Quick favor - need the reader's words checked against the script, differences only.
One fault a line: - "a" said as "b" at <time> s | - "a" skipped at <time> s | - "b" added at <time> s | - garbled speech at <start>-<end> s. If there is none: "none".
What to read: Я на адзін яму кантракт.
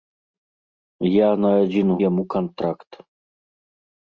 none